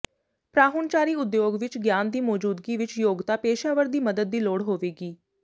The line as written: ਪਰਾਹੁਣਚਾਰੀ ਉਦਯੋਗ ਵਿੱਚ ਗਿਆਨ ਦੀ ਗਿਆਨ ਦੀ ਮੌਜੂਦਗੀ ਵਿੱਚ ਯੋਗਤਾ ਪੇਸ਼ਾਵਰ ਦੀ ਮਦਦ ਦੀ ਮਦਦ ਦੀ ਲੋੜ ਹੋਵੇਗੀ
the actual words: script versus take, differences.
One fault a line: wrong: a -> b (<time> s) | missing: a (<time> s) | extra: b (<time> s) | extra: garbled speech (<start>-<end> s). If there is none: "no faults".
missing: ਗਿਆਨ ਦੀ (2.2 s)
missing: ਮਦਦ ਦੀ (4.4 s)